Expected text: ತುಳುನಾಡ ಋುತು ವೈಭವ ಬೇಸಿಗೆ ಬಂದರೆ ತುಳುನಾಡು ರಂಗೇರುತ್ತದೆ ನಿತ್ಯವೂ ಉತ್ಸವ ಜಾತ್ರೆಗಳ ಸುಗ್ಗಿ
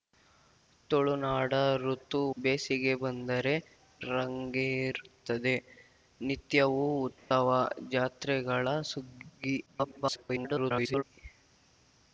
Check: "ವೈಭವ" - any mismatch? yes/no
yes